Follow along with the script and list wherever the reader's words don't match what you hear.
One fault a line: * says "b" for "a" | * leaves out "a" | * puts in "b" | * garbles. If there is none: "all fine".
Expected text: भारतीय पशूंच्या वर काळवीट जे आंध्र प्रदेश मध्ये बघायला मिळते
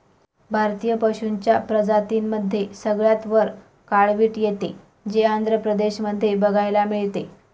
* puts in "प्रजातींमध्ये सगळ्यात"
* puts in "येते"